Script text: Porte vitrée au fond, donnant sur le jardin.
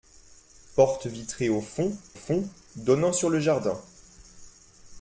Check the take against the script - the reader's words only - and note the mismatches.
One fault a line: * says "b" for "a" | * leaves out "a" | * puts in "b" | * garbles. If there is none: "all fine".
* puts in "fond"